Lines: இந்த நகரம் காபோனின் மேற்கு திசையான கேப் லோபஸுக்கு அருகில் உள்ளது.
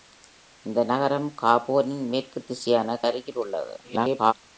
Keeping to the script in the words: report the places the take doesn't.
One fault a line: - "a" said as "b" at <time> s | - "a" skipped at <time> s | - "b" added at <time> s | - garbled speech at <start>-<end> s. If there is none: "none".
- "கேப் லோபஸுக்கு" skipped at 3.0 s
- garbled speech at 3.8-4.3 s